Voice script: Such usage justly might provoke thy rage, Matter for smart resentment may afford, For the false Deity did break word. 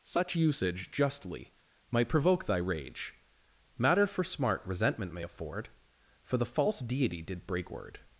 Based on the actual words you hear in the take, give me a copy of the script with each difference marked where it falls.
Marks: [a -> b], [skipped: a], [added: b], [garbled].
Such usage justly might provoke thy rage, Matter for smart resentment may afford, For the false Deity did break word.